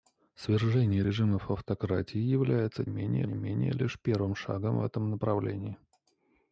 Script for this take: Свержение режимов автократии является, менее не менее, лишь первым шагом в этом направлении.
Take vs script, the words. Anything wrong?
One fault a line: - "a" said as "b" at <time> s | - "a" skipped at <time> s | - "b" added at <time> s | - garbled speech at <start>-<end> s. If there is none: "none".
none